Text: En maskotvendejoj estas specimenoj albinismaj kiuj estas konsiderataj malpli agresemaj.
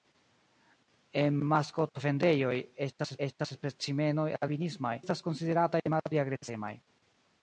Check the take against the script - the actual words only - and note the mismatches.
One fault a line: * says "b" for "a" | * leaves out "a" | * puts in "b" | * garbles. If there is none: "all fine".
* puts in "estas"
* leaves out "kiuj"